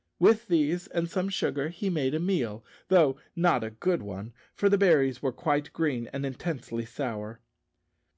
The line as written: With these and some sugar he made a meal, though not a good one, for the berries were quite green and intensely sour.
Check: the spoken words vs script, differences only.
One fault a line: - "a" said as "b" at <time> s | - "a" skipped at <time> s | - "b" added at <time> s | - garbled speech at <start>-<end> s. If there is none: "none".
none